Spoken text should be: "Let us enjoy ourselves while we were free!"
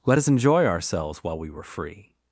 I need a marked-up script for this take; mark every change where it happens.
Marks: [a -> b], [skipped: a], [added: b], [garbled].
"Let us enjoy ourselves while we were free!"